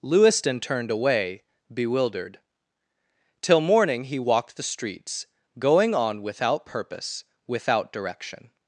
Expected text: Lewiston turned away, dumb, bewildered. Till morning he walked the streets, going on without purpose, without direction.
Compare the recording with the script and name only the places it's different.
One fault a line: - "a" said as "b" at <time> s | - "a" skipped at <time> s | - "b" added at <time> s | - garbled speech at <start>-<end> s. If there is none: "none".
- "dumb" skipped at 1.4 s